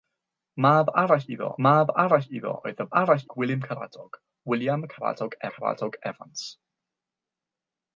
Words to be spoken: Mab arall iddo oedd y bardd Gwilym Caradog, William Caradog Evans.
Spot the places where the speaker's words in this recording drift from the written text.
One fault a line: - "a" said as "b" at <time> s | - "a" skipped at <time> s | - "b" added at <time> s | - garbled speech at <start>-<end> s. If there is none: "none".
- "mab arall iddo" added at 1.7 s
- "bardd" said as "arall" at 3.0 s
- "Caradog" added at 5.5 s